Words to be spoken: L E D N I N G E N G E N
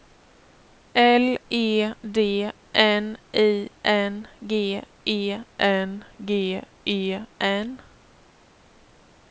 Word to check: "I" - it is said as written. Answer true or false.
true